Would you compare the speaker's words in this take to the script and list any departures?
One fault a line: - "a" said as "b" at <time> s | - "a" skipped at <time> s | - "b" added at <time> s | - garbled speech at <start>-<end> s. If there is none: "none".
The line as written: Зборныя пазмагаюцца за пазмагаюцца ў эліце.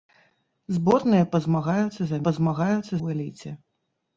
none